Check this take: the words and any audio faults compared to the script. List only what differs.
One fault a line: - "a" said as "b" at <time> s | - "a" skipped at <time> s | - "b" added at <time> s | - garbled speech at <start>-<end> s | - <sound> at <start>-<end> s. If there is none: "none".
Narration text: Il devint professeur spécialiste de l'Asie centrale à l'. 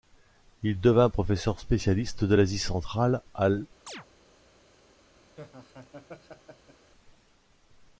- chirp at 3.9-4.1 s
- laugh at 5.4-6.9 s